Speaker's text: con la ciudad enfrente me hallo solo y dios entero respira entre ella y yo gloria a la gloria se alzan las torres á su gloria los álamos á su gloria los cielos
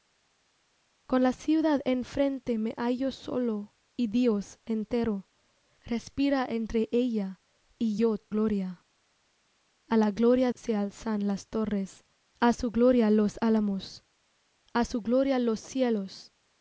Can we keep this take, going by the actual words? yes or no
yes